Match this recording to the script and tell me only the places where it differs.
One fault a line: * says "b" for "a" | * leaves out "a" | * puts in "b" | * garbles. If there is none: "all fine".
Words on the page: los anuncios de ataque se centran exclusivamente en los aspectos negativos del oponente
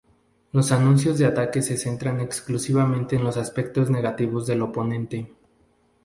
all fine